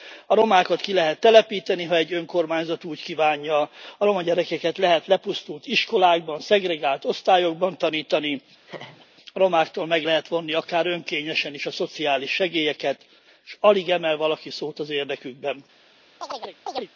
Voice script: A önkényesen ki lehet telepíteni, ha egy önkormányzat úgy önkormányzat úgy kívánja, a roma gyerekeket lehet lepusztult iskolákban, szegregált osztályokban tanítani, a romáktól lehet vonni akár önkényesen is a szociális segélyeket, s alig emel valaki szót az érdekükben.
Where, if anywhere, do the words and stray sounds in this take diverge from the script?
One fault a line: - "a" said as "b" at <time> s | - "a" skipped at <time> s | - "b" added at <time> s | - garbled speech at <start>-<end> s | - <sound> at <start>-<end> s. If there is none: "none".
- "önkényesen" said as "romákat" at 0.3 s
- "önkormányzat úgy" skipped at 3.0 s
- laugh at 8.7-9.1 s
- "meg" added at 9.9 s
- chirp at 16.2-16.9 s